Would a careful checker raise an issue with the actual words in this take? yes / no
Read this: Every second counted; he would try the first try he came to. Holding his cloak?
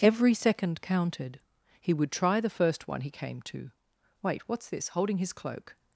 yes